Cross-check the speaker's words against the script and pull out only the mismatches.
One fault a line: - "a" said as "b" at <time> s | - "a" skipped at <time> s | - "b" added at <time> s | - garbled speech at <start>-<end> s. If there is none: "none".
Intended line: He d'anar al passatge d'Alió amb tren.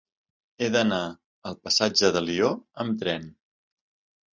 none